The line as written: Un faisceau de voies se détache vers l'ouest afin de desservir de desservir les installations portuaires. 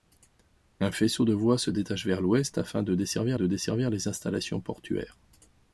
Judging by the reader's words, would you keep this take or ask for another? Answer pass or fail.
pass